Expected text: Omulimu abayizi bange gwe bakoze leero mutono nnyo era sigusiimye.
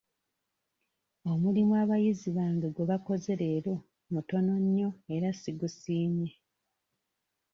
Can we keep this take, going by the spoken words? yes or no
yes